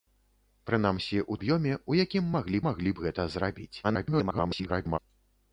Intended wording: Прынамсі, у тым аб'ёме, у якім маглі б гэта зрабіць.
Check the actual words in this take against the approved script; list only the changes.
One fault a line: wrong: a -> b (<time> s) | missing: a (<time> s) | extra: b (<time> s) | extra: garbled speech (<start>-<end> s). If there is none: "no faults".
missing: тым (1.4 s)
extra: маглі (2.7 s)
extra: garbled speech (3.8-5.0 s)